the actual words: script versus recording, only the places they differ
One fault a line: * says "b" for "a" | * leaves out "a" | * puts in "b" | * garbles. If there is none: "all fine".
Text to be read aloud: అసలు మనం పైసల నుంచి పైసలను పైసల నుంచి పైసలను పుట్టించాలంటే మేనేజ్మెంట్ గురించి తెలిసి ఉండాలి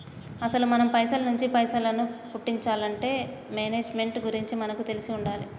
* leaves out "పైసల నుంచి పైసలను"
* puts in "మనకు"